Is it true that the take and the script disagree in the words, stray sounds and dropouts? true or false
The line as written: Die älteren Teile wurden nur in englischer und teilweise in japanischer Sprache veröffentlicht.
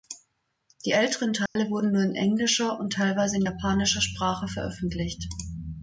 true